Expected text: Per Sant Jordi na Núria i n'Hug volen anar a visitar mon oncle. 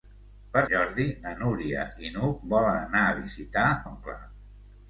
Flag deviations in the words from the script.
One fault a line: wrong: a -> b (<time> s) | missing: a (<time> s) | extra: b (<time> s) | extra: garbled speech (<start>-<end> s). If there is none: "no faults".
missing: Sant (0.6 s)
missing: mon (3.7 s)